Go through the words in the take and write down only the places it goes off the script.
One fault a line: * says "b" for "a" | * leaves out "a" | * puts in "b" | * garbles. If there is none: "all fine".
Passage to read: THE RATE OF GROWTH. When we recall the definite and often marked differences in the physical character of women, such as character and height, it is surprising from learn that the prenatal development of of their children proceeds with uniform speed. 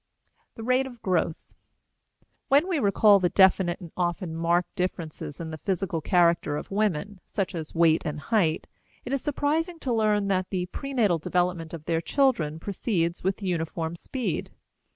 * says "weight" for "character"
* says "to" for "from"
* leaves out "of"